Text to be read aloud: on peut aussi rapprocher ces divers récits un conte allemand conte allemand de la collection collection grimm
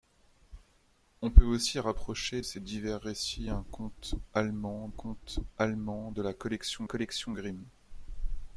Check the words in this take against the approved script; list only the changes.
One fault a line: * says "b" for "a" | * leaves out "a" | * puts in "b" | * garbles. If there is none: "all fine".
all fine